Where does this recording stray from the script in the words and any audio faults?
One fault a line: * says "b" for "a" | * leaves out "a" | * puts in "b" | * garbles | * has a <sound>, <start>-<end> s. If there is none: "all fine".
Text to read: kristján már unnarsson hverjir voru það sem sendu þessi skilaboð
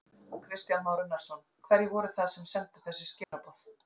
* has a dropout, 3.2-3.3 s